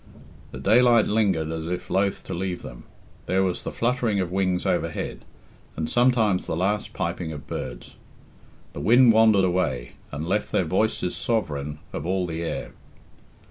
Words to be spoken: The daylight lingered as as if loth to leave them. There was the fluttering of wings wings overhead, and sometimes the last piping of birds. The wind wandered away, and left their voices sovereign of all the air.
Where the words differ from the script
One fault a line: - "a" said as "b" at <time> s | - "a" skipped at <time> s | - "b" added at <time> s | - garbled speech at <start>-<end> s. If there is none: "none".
- "as" skipped at 1.7 s
- "wings" skipped at 4.7 s